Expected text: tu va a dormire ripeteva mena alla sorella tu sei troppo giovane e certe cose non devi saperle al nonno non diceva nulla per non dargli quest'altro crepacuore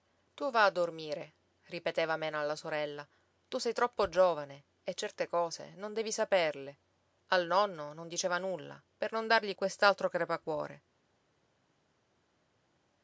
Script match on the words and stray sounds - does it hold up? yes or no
yes